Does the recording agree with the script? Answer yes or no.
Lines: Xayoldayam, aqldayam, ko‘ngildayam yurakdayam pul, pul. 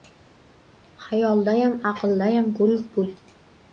no